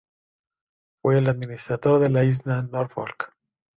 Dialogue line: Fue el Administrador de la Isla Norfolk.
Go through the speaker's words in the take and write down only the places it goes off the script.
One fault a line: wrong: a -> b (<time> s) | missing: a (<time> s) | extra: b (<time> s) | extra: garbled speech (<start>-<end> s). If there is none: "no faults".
no faults